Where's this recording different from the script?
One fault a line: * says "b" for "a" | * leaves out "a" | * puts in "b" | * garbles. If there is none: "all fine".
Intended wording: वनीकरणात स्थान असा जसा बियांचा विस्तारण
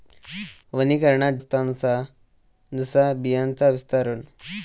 all fine